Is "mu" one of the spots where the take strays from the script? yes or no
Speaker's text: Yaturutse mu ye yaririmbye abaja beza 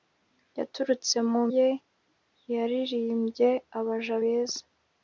no